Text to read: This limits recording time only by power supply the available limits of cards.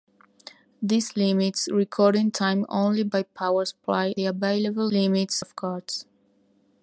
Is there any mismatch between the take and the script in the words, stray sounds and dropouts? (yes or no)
no